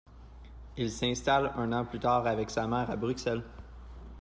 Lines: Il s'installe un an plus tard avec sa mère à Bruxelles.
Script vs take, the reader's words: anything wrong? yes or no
no